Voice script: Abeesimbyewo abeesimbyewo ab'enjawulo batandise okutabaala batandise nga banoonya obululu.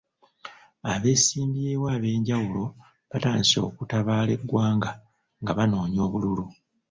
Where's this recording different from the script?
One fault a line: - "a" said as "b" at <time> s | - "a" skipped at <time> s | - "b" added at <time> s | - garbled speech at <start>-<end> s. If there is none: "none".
- "abeesimbyewo" skipped at 1.9 s
- "batandise" said as "eggwanga" at 4.4 s